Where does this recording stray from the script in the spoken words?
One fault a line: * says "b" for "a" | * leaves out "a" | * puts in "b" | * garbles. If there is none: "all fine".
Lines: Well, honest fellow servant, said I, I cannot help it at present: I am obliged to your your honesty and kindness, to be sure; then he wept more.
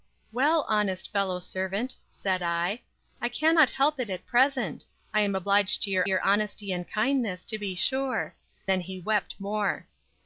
all fine